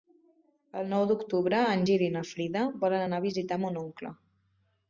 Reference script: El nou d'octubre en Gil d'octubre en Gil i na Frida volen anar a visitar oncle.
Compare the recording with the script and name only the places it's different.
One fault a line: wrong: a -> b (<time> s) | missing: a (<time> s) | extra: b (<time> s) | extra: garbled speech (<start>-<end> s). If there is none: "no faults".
missing: d'octubre en Gil (2.1 s)
extra: mon (3.7 s)